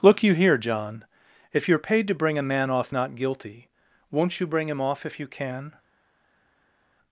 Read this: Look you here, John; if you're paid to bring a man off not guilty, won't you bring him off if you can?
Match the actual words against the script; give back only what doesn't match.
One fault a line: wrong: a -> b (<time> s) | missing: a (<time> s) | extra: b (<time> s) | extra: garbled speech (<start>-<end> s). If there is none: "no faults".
no faults